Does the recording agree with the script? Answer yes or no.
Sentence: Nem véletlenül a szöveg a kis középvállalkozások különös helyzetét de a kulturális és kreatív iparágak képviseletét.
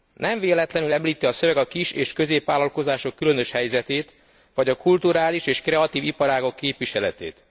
no